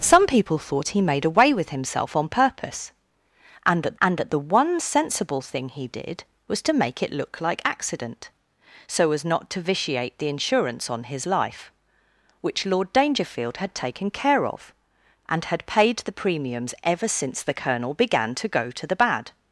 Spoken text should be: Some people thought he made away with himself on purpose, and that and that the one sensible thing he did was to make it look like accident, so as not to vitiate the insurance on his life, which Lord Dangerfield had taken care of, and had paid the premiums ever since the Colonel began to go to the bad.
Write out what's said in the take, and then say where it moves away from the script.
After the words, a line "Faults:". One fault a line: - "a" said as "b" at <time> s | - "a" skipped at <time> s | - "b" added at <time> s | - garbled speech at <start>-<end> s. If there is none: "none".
Some people thought he made away with himself on purpose, and that and that the one sensible thing he did was to make it look like accident, so as not to vitiate the insurance on his life, which Lord Dangerfield had taken care of, and had paid the premiums ever since the Colonel began to go to the bad.
Faults:
none